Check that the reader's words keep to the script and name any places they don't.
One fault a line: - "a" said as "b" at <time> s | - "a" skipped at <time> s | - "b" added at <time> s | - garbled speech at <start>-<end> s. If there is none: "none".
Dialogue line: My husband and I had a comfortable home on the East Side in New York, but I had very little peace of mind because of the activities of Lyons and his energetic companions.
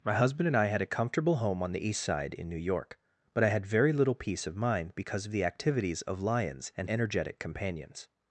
- "his" skipped at 6.9 s